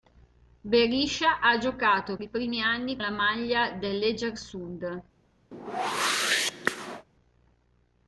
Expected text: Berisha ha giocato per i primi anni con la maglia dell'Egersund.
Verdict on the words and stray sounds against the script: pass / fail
fail